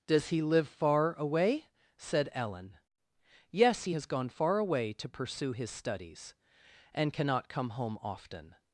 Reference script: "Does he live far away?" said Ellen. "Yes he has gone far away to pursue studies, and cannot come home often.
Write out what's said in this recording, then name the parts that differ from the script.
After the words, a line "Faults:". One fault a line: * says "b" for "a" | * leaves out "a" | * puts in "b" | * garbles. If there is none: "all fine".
"Does he live far away?" said Ellen. "Yes he has gone far away to pursue his studies, and cannot come home often.
Faults:
* puts in "his"